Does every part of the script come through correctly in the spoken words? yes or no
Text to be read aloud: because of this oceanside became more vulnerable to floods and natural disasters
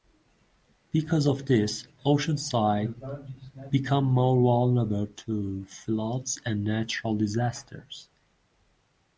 yes